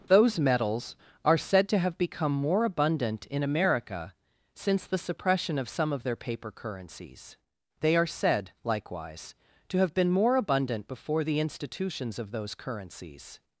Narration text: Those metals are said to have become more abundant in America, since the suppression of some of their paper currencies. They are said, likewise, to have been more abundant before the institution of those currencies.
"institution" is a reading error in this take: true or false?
true